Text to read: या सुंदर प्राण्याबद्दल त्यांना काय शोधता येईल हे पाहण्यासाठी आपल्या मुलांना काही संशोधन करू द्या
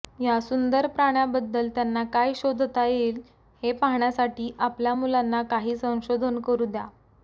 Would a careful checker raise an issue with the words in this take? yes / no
no